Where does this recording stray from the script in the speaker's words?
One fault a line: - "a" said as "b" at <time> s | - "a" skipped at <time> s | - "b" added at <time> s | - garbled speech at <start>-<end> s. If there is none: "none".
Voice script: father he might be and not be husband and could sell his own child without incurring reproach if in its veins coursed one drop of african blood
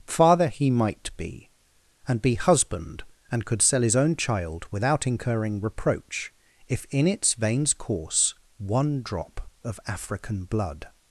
- "not" skipped at 2.2 s
- "coursed" said as "course" at 7.7 s